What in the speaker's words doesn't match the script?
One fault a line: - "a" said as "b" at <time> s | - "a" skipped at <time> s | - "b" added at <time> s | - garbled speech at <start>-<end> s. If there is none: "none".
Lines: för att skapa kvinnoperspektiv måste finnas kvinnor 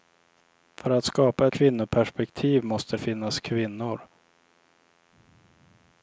none